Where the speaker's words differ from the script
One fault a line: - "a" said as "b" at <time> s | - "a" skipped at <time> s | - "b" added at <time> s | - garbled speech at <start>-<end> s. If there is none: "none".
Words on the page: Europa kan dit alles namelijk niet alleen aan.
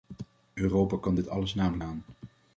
- "niet alleen" skipped at 1.8 s